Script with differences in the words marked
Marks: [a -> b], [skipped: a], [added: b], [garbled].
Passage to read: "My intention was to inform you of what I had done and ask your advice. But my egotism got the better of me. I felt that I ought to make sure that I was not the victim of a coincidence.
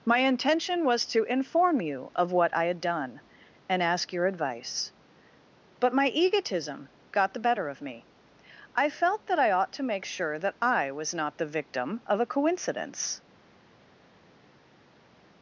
"My intention was to inform you of what I had done and ask your advice. But my egotism got the better of me. I felt that I ought to make sure that I was not the victim of a coincidence.